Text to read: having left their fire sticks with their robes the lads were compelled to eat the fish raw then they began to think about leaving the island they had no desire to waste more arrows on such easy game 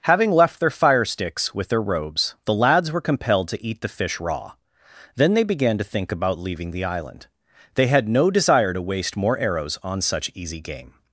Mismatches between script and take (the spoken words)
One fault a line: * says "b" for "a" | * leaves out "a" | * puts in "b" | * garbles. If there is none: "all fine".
all fine